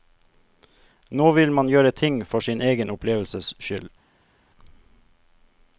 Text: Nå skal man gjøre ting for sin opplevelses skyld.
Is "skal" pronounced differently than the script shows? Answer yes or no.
yes